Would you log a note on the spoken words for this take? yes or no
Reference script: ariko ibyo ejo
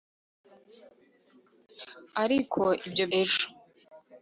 no